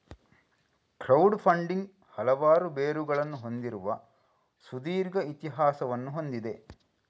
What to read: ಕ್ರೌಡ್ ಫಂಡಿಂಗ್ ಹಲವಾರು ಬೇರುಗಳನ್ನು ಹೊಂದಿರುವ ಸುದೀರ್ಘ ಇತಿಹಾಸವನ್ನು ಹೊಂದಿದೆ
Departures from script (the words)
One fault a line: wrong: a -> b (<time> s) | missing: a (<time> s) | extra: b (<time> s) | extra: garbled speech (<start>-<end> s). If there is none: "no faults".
no faults